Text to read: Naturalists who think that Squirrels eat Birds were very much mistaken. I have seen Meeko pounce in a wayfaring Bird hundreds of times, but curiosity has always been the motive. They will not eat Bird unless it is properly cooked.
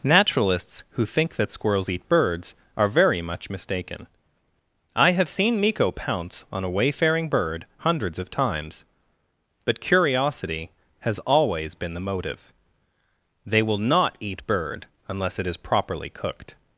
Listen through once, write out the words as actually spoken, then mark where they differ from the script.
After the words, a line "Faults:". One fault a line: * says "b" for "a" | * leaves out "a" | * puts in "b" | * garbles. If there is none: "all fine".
Naturalists who think that Squirrels eat Birds are very much mistaken. I have seen Meeko pounce on a wayfaring Bird hundreds of times, but curiosity has always been the motive. They will not eat Bird unless it is properly cooked.
Faults:
* says "are" for "were"
* says "on" for "in"